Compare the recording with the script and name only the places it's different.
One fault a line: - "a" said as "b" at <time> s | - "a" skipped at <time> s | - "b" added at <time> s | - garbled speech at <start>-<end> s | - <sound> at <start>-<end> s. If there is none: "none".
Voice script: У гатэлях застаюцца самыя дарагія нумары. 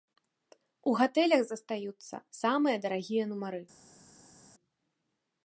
none